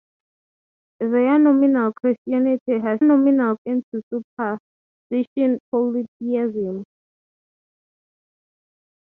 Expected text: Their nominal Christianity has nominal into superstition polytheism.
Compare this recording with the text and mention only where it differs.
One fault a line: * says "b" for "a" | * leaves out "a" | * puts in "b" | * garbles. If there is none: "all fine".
all fine